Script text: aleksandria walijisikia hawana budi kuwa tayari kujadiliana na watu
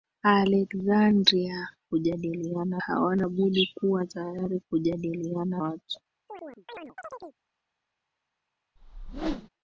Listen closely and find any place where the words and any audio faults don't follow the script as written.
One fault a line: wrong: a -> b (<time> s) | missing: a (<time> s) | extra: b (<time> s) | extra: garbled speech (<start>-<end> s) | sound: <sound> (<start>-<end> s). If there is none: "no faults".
wrong: walijisikia -> kujadiliana (1.9 s)
missing: na (5.6 s)
sound: chirp (6.3-7.4 s)
sound: whoosh (8.8-9.5 s)